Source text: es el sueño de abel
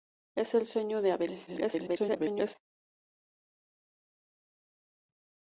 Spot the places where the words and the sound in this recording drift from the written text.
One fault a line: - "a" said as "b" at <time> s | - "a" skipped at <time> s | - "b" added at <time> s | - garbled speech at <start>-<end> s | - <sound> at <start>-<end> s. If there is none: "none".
- garbled speech at 1.5-2.6 s